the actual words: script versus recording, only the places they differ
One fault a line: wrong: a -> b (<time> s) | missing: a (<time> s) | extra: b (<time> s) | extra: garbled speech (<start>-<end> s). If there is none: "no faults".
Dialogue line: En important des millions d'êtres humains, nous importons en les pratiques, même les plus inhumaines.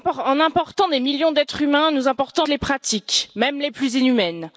no faults